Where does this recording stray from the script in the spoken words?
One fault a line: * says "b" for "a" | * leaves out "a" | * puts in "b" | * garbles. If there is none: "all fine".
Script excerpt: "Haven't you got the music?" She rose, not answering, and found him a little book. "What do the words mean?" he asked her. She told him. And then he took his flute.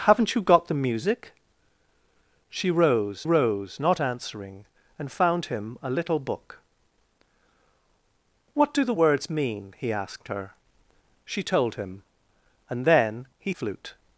* puts in "rose"
* leaves out "took his"